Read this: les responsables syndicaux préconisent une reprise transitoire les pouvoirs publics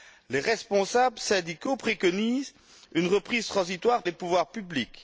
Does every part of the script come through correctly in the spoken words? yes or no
yes